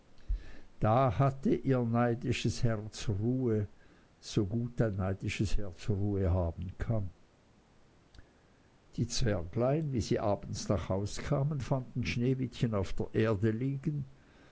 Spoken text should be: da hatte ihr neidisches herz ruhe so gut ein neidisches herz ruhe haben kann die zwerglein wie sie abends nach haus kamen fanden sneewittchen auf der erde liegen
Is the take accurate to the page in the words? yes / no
yes